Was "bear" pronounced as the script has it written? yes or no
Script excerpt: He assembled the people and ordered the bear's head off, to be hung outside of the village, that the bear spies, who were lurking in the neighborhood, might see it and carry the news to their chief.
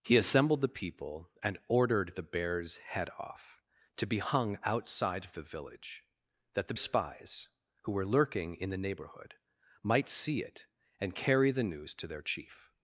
no